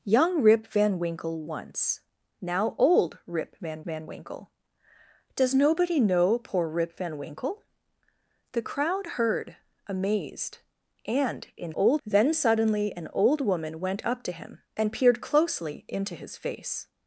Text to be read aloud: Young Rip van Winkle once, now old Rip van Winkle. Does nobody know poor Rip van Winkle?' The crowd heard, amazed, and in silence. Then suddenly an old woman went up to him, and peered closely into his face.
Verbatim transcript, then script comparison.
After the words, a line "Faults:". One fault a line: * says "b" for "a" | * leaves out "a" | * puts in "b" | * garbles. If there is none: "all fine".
Young Rip van Winkle once, now old Rip van van Winkle. Does nobody know poor Rip van Winkle?' The crowd heard, amazed, and in old. Then suddenly an old woman went up to him, and peered closely into his face.
Faults:
* puts in "van"
* says "old" for "silence"